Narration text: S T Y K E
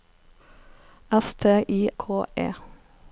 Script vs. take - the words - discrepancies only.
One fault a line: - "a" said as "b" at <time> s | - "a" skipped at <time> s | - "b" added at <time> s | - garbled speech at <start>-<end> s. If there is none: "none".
none